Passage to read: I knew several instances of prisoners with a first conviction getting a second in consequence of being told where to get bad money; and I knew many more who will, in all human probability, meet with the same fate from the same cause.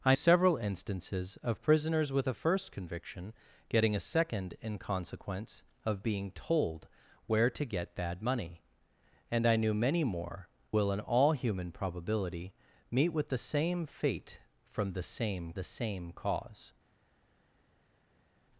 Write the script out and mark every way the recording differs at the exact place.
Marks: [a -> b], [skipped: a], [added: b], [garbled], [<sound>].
I [skipped: knew] several instances of prisoners with a first conviction getting a second in consequence of being told where to get bad money; and I knew many more [skipped: who] will, in all human probability, meet with the same fate from the same [added: the same] cause.